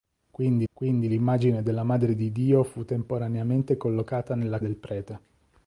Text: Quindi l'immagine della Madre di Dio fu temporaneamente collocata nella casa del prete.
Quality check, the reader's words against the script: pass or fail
fail